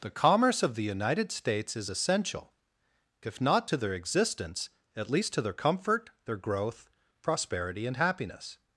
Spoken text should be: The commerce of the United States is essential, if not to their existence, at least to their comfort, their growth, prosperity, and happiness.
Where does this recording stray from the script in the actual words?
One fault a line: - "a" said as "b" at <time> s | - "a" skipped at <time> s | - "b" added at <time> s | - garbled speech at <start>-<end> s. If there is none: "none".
none